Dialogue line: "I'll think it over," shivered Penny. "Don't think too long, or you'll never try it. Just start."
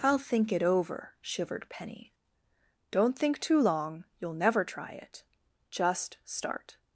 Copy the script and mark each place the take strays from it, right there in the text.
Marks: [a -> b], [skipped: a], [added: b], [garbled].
"I'll think it over," shivered Penny. "Don't think too long, [skipped: or] you'll never try it. Just start."